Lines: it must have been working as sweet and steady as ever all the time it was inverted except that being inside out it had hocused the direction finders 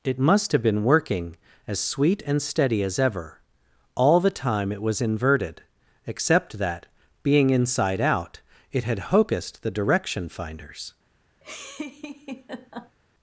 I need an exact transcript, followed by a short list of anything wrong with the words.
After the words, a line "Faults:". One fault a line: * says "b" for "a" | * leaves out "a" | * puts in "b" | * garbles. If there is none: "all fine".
it must have been working as sweet and steady as ever all the time it was inverted except that being inside out it had hocused the direction finders
Faults:
all fine